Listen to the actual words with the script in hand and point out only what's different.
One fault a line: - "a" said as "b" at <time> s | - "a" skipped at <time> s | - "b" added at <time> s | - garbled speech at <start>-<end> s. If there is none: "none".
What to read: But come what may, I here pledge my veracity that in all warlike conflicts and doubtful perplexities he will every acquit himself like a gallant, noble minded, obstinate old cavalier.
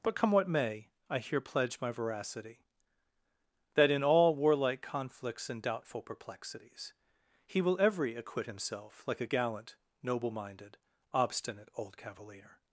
none